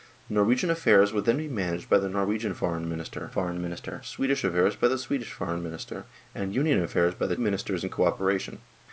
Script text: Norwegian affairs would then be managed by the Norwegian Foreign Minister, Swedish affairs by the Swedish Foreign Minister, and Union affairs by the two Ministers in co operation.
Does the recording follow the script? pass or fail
fail